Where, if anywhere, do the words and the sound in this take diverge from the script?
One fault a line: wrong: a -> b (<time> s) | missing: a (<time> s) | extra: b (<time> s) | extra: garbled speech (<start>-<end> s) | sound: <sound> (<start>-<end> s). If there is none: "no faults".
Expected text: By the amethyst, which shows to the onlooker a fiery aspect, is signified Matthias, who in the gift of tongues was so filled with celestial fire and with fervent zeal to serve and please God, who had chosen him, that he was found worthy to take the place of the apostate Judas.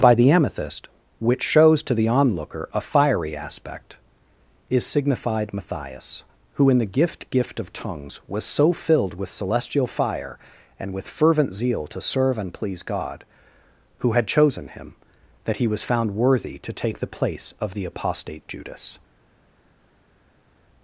extra: gift (7.3 s)